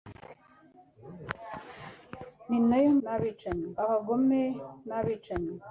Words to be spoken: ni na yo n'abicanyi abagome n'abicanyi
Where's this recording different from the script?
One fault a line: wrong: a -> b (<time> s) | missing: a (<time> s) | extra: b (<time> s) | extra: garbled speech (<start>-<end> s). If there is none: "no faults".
no faults